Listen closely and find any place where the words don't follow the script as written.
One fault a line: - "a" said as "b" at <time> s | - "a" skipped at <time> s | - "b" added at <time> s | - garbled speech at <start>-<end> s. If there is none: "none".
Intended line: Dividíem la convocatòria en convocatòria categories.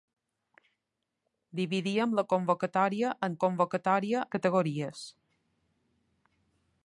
none